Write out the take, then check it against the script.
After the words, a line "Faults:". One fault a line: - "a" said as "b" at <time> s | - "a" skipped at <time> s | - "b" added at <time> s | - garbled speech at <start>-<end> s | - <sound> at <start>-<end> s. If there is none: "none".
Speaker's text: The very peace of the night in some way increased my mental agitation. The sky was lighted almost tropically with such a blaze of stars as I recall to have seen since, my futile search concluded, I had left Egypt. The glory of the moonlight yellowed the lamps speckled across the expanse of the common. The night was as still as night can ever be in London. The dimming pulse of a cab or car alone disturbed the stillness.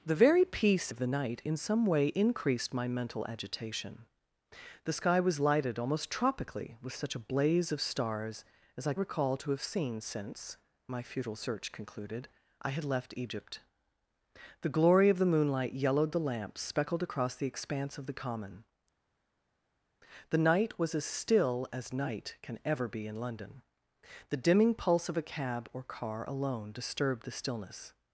The very peace of the night in some way increased my mental agitation. The sky was lighted almost tropically with such a blaze of stars as I recall to have seen since, my futile search concluded, I had left Egypt. The glory of the moonlight yellowed the lamps speckled across the expanse of the common. The night was as still as night can ever be in London. The dimming pulse of a cab or car alone disturbed the stillness.
Faults:
none